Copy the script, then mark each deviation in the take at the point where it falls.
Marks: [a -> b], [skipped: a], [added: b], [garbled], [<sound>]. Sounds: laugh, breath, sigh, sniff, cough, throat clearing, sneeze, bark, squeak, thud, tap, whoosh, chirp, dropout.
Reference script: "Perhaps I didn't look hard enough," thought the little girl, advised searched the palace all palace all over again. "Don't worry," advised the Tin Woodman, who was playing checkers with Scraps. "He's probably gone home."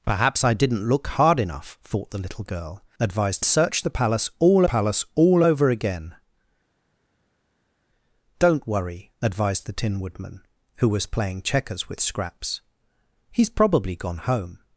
"Perhaps I didn't look hard enough," thought the little girl, advised searched the palace all palace all over again. "Don't worry," advised the Tin Woodman, who was playing checkers with Scraps. "He's probably gone home."